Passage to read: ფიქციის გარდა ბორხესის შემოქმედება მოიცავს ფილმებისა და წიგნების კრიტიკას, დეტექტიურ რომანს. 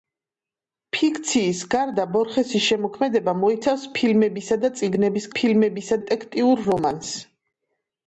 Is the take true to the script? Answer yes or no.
no